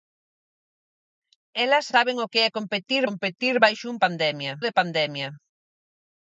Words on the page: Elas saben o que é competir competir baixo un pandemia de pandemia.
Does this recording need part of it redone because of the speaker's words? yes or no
no